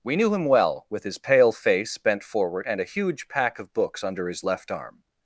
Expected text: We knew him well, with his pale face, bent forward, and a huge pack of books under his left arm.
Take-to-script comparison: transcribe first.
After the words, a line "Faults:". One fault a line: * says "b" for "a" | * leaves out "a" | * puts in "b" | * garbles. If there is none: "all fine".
We knew him well, with his pale face, bent forward, and a huge pack of books under his left arm.
Faults:
all fine